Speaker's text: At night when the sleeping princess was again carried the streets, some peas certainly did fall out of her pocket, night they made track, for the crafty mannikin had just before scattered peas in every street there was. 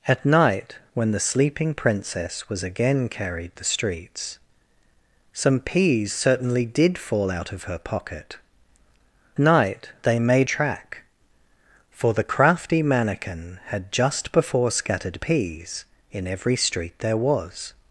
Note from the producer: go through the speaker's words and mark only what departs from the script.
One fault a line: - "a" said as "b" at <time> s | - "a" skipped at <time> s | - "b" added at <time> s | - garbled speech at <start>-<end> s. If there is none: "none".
none